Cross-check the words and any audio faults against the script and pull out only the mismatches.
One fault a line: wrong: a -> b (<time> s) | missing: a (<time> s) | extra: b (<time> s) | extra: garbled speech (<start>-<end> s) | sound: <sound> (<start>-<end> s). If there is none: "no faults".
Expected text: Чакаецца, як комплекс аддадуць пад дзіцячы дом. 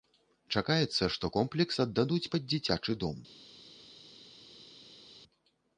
wrong: як -> што (1.1 s)